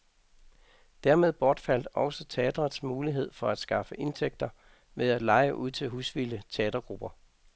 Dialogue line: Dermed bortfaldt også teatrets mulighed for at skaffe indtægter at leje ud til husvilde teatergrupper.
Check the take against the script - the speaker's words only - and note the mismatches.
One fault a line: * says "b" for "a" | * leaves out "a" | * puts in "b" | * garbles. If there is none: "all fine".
* puts in "ved"